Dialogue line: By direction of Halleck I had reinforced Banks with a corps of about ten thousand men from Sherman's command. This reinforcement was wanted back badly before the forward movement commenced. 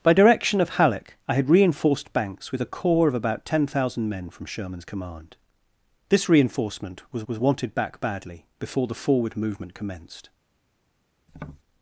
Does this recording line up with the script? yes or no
no